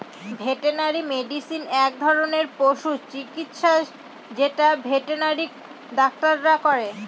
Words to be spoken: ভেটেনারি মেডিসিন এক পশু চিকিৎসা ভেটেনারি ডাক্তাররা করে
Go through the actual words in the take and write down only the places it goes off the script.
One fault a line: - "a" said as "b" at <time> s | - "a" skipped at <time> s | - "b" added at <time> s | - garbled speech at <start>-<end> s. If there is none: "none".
- "ধরনের" added at 2.0 s
- "যেটা" added at 4.3 s